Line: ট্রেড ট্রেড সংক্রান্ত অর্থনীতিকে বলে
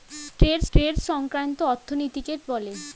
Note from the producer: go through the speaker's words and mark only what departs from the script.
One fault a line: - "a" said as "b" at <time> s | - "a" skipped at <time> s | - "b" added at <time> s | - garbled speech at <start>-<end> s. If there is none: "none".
none